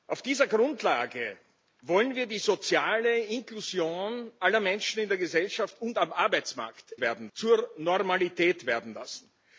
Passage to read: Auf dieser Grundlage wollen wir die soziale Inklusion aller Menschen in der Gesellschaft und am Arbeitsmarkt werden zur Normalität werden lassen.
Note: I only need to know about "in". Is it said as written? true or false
true